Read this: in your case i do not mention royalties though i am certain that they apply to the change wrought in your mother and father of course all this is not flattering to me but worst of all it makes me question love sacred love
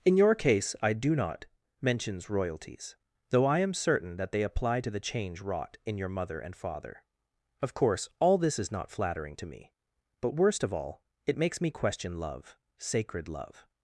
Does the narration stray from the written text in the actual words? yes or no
yes